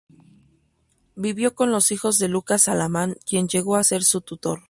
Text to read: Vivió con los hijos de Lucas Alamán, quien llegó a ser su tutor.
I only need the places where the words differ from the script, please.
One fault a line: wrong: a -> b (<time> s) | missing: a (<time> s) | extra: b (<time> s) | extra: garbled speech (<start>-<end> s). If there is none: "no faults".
no faults